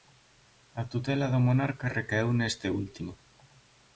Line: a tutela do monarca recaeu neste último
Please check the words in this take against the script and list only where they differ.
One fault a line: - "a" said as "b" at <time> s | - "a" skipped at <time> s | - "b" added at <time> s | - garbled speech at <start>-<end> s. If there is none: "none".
none